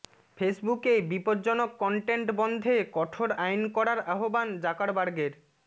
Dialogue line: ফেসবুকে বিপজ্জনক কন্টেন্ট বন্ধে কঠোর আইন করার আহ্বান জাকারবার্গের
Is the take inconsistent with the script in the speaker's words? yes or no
no